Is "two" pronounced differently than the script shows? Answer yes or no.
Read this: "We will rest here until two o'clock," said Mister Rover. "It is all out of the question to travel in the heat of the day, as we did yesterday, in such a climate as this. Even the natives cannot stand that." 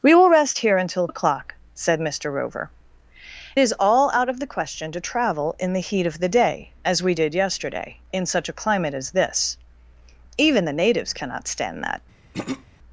yes